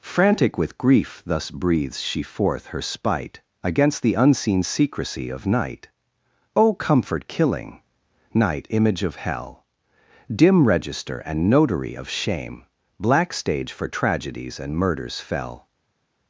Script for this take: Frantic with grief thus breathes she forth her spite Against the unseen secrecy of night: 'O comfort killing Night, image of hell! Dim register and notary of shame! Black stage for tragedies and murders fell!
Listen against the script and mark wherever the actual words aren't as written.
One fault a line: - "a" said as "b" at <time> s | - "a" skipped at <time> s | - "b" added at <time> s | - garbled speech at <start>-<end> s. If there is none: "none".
none